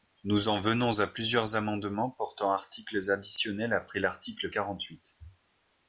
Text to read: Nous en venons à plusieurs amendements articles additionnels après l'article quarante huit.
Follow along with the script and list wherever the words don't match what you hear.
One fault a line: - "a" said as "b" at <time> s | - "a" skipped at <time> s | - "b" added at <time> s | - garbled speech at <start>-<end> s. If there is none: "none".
- "portant" added at 2.1 s